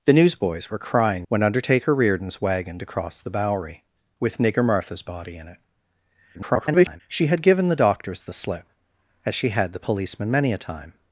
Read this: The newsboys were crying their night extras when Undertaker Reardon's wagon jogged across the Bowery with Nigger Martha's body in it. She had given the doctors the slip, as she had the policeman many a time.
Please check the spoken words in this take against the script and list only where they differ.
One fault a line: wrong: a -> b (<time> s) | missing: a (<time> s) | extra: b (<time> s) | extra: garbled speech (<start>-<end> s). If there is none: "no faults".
missing: their night extras (1.3 s)
missing: jogged (2.8 s)
extra: garbled speech (6.3-7.0 s)